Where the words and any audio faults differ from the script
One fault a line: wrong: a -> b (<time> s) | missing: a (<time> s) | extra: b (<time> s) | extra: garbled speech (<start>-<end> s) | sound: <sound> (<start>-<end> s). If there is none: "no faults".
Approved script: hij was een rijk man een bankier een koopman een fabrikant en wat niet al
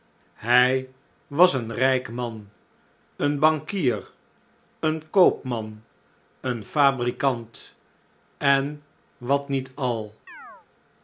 sound: chirp (10.3-10.7 s)